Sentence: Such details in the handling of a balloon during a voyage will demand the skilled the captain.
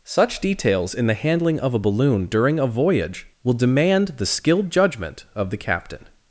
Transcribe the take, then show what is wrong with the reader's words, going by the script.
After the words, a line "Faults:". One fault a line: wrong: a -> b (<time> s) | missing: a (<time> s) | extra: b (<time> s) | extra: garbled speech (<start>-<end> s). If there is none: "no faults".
Such details in the handling of a balloon during a voyage will demand the skilled judgment of the captain.
Faults:
extra: judgment of (4.7 s)